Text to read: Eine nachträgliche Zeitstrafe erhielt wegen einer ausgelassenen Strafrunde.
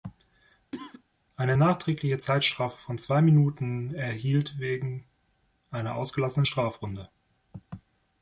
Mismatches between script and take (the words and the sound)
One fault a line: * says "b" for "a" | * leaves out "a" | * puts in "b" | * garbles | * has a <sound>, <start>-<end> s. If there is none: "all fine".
* has a cough, 0.7-1.0 s
* puts in "von zwei Minuten"